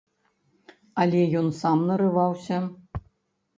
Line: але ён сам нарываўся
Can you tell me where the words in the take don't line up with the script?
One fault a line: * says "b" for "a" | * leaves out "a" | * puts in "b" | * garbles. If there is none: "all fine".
all fine